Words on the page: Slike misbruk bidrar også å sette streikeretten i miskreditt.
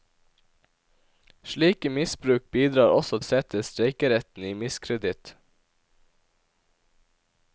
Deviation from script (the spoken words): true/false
false